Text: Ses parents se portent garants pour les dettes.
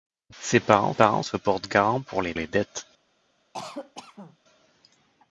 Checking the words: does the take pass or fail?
fail